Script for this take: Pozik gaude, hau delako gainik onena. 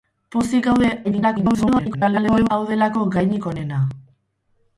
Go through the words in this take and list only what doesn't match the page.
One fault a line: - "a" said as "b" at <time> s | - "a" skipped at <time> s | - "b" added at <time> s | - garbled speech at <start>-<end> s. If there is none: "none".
- garbled speech at 1.0-2.5 s